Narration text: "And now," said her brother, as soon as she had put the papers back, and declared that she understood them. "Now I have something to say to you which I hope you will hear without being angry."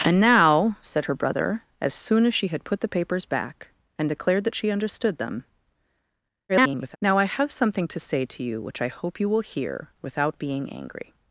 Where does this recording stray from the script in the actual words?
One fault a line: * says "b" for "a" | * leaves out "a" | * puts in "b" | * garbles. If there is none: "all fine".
* garbles